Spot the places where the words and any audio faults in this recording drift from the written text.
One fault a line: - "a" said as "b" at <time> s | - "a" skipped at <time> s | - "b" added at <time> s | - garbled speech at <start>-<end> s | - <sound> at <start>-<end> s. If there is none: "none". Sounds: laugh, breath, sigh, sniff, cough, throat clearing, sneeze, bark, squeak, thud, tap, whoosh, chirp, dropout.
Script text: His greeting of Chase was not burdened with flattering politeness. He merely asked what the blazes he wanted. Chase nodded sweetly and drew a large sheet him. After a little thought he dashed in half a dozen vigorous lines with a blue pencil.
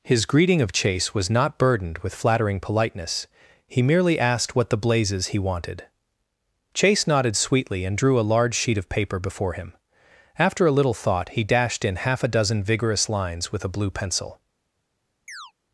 - "of paper before" added at 8.8 s
- chirp at 15.3-15.5 s